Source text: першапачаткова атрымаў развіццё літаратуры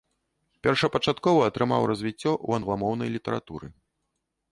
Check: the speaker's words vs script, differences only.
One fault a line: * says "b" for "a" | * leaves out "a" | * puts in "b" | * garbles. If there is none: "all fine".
* puts in "ў англамоўнай"